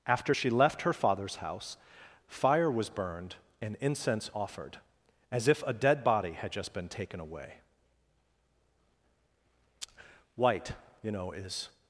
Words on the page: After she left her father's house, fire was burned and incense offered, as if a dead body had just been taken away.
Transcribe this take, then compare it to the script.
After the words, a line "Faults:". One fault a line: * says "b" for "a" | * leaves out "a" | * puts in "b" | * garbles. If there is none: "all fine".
After she left her father's house, fire was burned and incense offered, as if a dead body had just been taken away. White, you know, is
Faults:
* puts in "White you know is"